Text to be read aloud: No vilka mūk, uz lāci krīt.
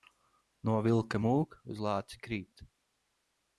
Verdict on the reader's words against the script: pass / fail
pass